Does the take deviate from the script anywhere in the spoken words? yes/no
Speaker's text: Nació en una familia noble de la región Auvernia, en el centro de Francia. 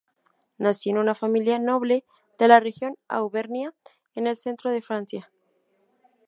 no